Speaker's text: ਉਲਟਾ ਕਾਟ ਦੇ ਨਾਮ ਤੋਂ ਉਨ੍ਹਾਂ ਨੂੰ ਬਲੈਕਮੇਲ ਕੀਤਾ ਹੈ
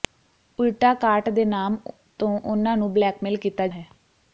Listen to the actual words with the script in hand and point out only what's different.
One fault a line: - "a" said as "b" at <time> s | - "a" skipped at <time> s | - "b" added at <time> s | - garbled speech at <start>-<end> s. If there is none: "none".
none